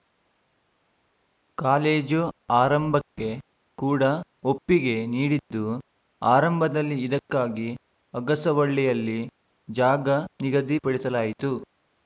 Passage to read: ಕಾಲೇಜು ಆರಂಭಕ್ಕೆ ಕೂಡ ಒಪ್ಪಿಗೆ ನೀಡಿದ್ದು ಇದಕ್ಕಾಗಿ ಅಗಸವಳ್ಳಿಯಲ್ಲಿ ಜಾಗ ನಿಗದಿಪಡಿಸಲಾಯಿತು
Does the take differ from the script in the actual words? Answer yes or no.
yes